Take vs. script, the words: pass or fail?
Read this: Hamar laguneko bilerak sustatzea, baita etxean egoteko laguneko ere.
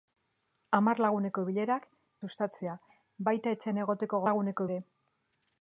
pass